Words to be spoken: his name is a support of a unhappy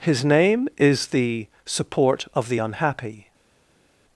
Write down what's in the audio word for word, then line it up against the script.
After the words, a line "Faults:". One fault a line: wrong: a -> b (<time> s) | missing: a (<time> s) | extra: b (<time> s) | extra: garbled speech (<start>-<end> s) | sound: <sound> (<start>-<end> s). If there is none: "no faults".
his name is the support of the unhappy
Faults:
wrong: a -> the (1.1 s)
wrong: a -> the (2.5 s)